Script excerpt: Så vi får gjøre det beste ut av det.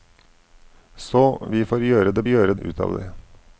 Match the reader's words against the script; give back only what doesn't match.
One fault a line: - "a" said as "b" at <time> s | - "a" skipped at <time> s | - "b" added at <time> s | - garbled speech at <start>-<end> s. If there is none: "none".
- "beste" said as "gjøre" at 2.3 s